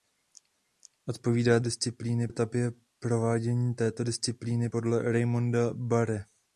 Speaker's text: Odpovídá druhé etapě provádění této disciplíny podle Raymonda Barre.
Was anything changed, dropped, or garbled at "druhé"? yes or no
yes